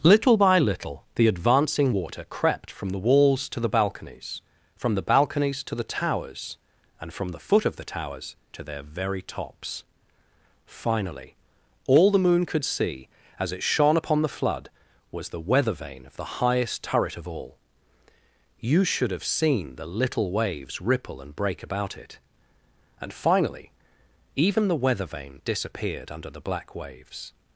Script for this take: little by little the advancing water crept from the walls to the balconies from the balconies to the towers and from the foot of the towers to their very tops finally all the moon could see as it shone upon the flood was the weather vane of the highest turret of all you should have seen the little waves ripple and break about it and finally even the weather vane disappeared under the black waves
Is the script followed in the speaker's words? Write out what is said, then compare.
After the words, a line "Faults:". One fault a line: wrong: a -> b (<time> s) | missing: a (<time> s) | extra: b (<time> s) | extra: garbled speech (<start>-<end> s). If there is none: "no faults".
little by little the advancing water crept from the walls to the balconies from the balconies to the towers and from the foot of the towers to their very tops finally all the moon could see as it shone upon the flood was the weather vane of the highest turret of all you should have seen the little waves ripple and break about it and finally even the weather vane disappeared under the black waves
Faults:
no faults